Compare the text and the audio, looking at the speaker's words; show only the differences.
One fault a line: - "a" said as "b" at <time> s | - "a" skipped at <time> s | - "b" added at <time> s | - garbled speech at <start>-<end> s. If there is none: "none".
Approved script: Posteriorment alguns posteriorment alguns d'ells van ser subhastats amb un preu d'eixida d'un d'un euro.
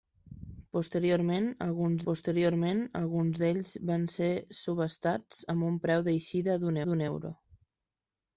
none